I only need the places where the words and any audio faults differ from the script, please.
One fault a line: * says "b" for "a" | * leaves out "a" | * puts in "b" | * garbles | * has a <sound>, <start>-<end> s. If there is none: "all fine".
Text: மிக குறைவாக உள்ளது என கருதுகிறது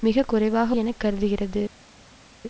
* leaves out "உள்ளது"